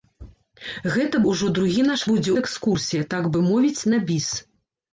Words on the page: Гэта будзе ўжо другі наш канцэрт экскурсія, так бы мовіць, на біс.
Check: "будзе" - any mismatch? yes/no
yes